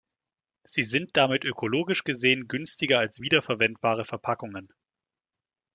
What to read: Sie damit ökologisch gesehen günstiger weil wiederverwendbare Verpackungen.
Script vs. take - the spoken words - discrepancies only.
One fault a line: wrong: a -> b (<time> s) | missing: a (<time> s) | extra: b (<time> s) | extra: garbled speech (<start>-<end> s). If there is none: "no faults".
extra: sind (0.8 s)
wrong: weil -> als (3.0 s)